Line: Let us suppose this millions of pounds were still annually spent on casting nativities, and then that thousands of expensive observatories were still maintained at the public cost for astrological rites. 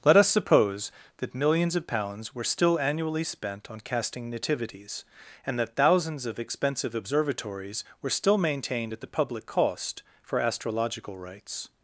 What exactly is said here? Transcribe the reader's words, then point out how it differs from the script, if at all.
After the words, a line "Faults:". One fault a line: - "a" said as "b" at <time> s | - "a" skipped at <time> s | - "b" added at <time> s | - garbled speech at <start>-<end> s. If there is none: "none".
Let us suppose that millions of pounds were still annually spent on casting nativities, and that thousands of expensive observatories were still maintained at the public cost for astrological rites.
Faults:
- "this" said as "that" at 1.2 s
- "then" skipped at 5.6 s